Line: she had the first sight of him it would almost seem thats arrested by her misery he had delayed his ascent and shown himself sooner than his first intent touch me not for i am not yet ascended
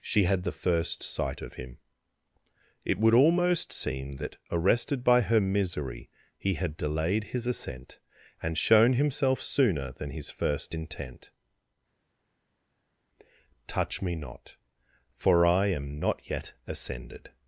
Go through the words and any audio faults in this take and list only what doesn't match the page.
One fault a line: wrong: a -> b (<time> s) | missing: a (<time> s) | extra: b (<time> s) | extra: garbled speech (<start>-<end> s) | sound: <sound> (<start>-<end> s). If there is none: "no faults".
wrong: thats -> that (4.1 s)